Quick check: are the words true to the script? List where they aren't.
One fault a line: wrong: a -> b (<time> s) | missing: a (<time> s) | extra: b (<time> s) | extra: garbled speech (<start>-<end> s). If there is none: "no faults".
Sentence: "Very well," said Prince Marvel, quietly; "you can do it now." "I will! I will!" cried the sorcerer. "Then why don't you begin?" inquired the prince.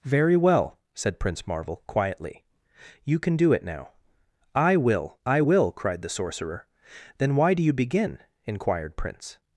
wrong: don't -> do (7.5 s)
missing: the (9.0 s)